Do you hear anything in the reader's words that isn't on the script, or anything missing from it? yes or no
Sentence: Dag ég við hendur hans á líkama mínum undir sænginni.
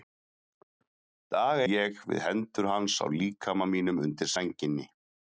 no